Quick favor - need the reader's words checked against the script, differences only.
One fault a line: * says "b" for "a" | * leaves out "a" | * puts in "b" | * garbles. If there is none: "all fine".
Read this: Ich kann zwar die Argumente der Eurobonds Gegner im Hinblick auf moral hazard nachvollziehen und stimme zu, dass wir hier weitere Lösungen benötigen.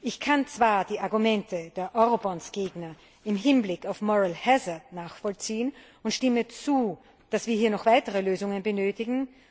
* puts in "noch"